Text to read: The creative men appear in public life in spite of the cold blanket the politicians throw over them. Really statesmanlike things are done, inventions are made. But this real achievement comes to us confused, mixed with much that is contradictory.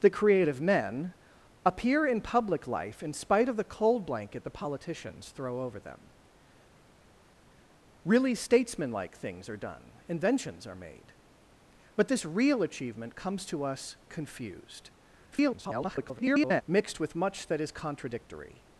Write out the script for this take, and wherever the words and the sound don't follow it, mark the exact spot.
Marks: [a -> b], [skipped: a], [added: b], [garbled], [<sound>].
The creative men appear in public life in spite of the cold blanket the politicians throw over them. Really statesmanlike things are done, inventions are made. But this real achievement comes to us confused, [garbled] mixed with much that is contradictory.